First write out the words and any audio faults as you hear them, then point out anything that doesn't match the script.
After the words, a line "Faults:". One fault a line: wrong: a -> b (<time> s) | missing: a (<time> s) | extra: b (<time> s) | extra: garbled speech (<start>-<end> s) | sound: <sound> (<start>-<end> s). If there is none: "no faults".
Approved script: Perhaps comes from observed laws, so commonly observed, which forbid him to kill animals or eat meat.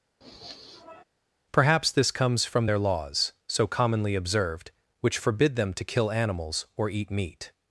Perhaps this comes from their laws, so commonly observed, which forbid them to kill animals or eat meat.
Faults:
sound: sniff (0.2-1.0 s)
extra: this (1.9 s)
wrong: observed -> their (2.6 s)
wrong: him -> them (5.5 s)